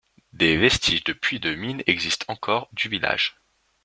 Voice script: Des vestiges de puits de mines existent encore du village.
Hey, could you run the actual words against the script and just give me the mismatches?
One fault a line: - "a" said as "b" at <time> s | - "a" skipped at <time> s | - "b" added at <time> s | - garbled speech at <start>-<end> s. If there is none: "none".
none